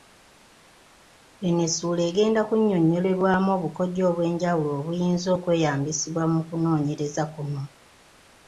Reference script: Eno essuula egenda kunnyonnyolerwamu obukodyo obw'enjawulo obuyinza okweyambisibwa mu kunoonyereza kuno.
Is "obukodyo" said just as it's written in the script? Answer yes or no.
yes